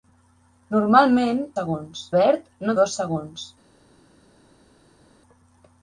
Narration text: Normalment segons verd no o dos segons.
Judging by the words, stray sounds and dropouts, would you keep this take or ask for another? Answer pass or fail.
pass